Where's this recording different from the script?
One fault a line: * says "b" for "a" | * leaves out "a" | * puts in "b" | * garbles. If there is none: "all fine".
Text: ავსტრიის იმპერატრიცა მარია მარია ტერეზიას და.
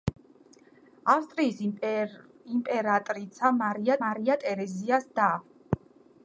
all fine